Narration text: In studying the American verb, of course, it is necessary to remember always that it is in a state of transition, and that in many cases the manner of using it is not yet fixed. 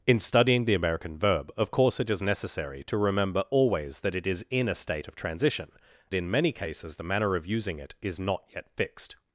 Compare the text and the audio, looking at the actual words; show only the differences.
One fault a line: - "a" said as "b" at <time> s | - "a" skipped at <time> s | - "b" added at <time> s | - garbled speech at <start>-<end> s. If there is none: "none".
- "and that" skipped at 5.7 s